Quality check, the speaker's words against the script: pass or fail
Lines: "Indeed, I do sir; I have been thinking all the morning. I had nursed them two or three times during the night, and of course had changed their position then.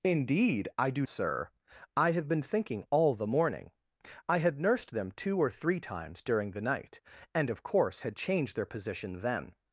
pass